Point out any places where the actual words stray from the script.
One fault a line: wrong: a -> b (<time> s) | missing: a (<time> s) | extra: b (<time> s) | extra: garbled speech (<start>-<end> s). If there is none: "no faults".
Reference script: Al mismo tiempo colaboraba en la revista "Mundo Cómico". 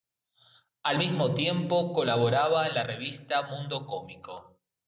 no faults